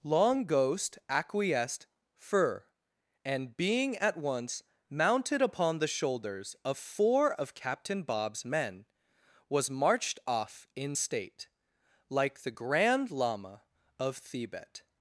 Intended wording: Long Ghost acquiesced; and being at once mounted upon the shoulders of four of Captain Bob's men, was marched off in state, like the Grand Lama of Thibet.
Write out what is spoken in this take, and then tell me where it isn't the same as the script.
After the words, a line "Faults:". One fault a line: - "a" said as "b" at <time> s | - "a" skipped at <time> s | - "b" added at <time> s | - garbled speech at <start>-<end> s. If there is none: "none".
Long Ghost acquiesced; fur and being at once mounted upon the shoulders of four of Captain Bob's men, was marched off in state, like the Grand Lama of Thibet.
Faults:
- "fur" added at 2.1 s